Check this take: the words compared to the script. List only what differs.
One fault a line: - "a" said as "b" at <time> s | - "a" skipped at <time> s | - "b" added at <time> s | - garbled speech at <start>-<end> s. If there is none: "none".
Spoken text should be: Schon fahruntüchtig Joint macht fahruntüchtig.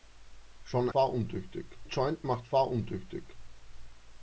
none